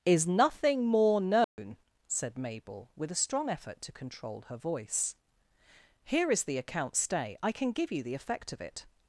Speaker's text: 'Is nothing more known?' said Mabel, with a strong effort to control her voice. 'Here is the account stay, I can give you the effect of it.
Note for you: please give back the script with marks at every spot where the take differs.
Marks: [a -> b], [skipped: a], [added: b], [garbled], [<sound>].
'Is nothing more known?' [dropout] said Mabel, with a strong effort to control her voice. 'Here is the account stay, I can give you the effect of it.